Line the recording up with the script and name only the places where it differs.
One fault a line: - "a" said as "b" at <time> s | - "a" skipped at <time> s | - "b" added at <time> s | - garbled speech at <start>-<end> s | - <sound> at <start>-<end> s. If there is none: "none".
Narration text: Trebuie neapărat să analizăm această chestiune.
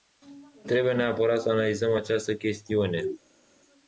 none